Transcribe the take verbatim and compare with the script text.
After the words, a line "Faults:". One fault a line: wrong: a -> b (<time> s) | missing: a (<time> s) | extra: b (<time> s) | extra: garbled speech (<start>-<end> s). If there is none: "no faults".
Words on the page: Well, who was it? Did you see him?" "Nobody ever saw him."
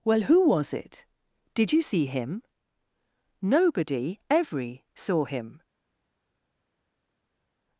Well, who was it? Did you see him?" "Nobody every saw him."
Faults:
wrong: ever -> every (4.3 s)